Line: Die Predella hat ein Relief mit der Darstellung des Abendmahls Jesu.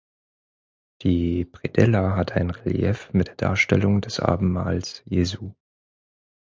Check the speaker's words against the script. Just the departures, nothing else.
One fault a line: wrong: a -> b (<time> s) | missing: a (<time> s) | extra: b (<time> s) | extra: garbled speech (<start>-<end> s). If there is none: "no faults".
no faults